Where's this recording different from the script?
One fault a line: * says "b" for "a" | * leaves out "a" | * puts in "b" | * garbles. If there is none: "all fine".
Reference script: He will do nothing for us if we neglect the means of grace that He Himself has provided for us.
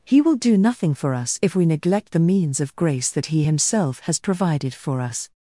all fine